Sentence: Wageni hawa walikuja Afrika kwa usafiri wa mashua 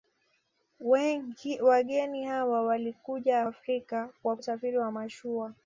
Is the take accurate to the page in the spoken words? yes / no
yes